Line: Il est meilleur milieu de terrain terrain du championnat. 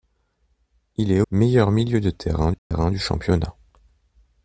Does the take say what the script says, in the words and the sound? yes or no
no